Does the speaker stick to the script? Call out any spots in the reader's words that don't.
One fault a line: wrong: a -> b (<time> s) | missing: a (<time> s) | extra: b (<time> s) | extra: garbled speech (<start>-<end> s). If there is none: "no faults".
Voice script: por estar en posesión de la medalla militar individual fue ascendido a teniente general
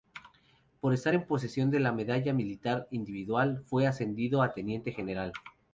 no faults